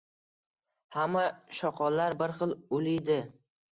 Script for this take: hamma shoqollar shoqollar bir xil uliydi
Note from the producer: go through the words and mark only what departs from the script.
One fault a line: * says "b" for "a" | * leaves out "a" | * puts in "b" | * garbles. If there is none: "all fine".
* leaves out "shoqollar"